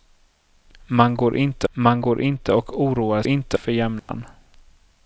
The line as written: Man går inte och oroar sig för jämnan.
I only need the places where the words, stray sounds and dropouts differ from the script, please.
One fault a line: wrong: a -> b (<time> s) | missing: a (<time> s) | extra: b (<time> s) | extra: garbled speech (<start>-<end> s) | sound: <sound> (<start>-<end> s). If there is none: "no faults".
extra: man går inte (1.7 s)
wrong: sig -> inte (3.3 s)
sound: dropout (4.0-4.1 s)